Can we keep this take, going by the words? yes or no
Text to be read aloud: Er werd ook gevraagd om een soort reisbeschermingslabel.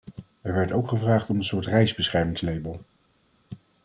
yes